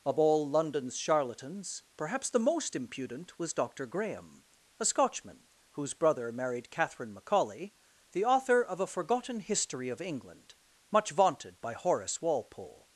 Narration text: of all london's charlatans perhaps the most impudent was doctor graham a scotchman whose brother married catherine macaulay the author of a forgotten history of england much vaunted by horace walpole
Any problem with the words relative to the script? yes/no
no